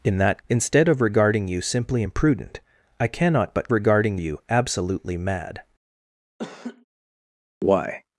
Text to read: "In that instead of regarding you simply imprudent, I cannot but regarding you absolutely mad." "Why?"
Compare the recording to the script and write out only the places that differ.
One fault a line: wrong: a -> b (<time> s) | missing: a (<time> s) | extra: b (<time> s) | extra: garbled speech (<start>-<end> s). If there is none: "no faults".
no faults